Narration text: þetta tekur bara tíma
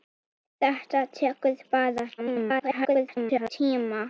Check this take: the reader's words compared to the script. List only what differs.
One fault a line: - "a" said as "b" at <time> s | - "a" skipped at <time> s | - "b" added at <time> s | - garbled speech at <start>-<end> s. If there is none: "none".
- garbled speech at 2.2-3.5 s